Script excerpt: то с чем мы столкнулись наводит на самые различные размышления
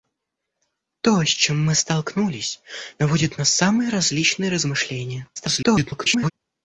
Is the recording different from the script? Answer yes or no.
yes